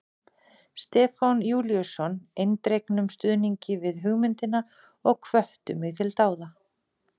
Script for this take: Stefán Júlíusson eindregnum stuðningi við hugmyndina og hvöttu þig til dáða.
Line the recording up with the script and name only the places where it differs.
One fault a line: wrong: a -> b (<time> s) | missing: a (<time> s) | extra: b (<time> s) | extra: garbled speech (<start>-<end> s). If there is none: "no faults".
wrong: þig -> mig (5.8 s)